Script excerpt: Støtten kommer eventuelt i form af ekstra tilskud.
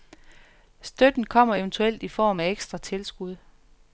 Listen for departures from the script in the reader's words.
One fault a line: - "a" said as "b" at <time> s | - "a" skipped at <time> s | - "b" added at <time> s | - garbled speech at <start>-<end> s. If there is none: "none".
none